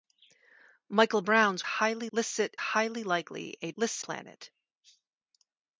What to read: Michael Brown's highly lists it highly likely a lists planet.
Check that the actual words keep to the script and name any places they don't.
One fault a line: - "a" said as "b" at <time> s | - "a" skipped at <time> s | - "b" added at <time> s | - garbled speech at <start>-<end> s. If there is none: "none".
none